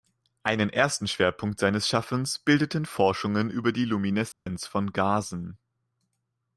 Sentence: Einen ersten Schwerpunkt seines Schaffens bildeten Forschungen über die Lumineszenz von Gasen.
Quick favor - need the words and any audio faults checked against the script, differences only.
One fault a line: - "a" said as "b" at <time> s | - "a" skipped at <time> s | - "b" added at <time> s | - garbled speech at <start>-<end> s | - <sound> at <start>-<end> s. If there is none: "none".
- dropout at 4.3-4.5 s